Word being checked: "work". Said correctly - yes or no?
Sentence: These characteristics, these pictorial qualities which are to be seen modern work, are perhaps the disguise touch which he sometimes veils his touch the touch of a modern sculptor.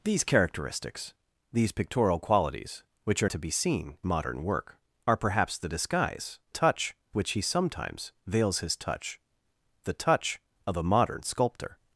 yes